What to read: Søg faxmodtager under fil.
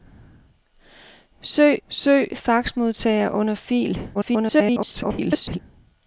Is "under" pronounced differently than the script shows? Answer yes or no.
no